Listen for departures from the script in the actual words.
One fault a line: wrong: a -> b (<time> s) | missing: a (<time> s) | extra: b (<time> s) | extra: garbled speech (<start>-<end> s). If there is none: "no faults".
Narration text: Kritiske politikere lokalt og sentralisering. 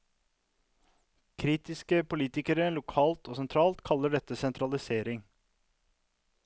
extra: sentralt kaller dette (3.4 s)